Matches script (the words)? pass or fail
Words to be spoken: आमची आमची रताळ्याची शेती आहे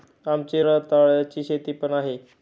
fail